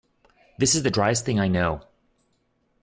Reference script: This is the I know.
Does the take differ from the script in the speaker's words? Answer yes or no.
yes